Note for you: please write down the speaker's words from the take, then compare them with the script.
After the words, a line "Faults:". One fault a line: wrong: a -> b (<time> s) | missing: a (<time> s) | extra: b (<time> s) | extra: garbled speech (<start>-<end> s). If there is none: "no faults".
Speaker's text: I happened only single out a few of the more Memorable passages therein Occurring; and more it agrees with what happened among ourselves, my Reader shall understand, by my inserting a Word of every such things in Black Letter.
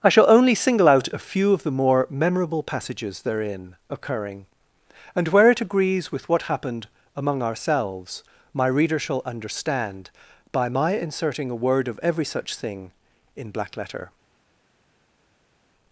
I shall only single out a few of the more Memorable passages therein Occurring; and where it agrees with what happened among ourselves, my Reader shall understand, by my inserting a Word of every such thing in Black Letter.
Faults:
wrong: happened -> shall (0.1 s)
wrong: more -> where (5.3 s)
wrong: things -> thing (12.5 s)